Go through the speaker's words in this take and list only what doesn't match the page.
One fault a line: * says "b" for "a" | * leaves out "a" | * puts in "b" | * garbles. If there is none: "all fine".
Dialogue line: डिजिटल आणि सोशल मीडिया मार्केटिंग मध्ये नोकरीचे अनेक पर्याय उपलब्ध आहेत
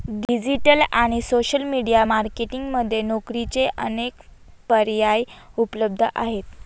all fine